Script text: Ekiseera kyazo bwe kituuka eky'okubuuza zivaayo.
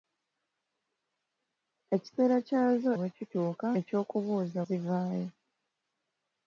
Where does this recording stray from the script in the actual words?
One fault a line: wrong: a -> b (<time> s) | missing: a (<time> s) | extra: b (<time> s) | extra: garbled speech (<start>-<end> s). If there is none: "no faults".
no faults